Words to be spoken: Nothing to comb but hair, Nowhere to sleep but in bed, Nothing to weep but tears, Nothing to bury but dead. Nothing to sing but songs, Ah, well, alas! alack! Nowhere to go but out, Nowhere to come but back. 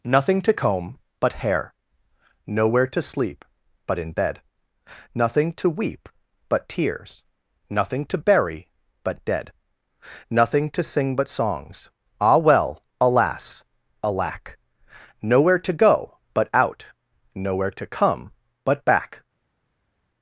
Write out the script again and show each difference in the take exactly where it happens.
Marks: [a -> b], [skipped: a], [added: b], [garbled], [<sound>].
Nothing to comb but hair, Nowhere to sleep but in bed, Nothing to weep but tears, Nothing to bury but dead. Nothing to sing but songs, Ah, well, alas! alack! Nowhere to go but out, Nowhere to come but back.